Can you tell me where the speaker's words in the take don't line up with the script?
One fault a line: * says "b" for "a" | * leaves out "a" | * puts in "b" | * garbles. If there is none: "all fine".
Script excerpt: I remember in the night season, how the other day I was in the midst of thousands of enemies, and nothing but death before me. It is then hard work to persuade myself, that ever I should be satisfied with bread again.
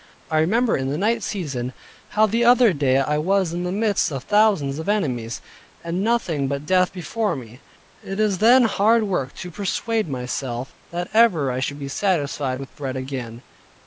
all fine